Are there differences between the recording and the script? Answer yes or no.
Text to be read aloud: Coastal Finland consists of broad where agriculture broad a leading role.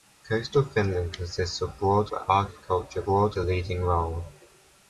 no